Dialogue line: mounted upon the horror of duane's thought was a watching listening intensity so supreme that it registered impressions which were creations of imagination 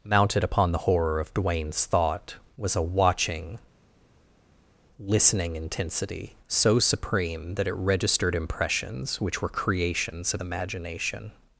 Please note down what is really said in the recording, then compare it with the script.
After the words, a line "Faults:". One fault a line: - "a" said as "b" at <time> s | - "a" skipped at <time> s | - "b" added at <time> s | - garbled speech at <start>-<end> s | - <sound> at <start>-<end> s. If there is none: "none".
mounted upon the horror of duane's thought was a watching listening intensity so supreme that it registered impressions which were creations of imagination
Faults:
none